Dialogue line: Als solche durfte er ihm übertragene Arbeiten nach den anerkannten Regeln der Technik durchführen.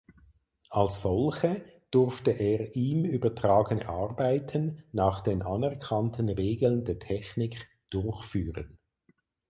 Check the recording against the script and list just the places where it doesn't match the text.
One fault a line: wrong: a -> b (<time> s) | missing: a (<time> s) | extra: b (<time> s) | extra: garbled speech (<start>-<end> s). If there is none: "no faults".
no faults